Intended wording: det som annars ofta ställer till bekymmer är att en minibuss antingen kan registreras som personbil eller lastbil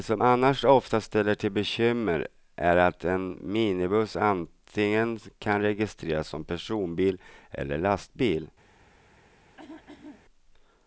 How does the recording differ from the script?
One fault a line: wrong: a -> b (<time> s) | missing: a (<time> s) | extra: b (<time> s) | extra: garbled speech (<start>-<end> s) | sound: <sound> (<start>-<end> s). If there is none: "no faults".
sound: throat clearing (9.6-10.3 s)